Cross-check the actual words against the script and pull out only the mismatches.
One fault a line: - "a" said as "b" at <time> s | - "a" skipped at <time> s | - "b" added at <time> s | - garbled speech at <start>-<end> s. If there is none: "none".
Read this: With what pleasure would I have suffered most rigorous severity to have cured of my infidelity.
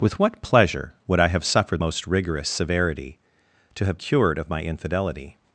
none